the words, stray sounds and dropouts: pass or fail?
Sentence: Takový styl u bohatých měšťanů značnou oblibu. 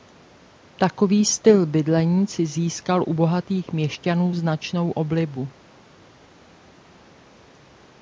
fail